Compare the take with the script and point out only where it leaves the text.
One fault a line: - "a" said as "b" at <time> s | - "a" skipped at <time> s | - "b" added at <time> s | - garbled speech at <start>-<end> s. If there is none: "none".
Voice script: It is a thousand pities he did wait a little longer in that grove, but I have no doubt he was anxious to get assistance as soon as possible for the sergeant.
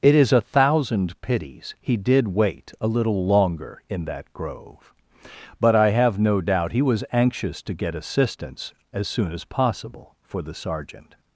none